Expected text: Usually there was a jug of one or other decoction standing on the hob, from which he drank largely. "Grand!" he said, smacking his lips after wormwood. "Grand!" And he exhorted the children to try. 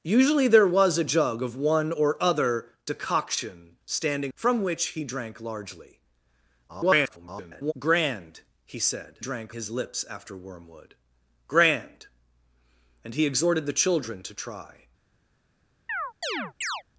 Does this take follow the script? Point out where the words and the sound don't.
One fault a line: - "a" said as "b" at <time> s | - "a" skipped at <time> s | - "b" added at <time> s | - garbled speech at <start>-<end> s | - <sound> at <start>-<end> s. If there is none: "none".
- "on the hob" skipped at 4.3 s
- garbled speech at 6.7-7.7 s
- "smacking" said as "drank" at 9.2 s
- chirp at 15.9-16.8 s